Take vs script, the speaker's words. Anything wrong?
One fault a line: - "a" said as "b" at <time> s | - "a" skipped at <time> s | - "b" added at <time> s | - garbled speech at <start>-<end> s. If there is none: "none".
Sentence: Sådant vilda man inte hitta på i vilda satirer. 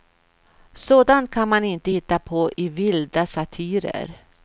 - "vilda" said as "kan" at 1.3 s